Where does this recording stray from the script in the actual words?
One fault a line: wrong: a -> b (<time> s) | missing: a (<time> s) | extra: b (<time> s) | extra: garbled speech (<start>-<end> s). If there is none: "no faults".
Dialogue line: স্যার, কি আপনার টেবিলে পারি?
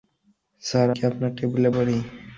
no faults